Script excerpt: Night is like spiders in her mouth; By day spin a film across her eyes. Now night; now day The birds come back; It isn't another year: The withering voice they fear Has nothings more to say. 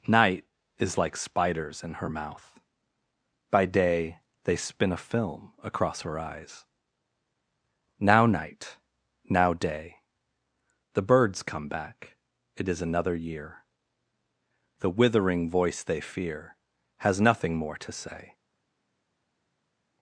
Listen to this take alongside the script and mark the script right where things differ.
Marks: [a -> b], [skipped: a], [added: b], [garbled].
Night is like spiders in her mouth; By day [added: they] spin a film across her eyes. Now night; now day The birds come back; It [isn't -> is] another year: The withering voice they fear Has [nothings -> nothing] more to say.